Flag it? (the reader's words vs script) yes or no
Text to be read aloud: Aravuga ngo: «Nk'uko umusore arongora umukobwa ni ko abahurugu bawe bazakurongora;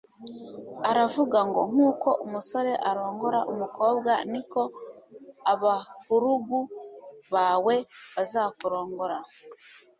no